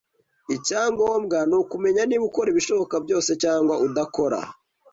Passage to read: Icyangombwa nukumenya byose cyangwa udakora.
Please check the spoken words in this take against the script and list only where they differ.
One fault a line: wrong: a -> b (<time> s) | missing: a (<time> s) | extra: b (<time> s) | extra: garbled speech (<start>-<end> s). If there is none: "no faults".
extra: niba ukora ibishoboka (2.0 s)